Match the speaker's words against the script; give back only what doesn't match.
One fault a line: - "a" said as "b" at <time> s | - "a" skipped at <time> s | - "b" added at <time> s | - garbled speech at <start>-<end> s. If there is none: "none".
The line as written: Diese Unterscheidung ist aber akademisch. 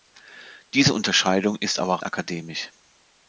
none